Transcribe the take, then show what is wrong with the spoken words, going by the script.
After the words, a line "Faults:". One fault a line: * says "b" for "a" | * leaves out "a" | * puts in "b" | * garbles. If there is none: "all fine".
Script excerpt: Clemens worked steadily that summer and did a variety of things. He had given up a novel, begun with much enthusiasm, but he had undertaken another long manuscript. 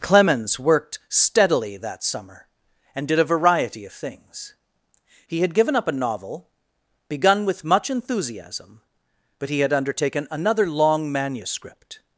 Clemens worked steadily that summer and did a variety of things. He had given up a novel, begun with much enthusiasm, but he had undertaken another long manuscript.
Faults:
all fine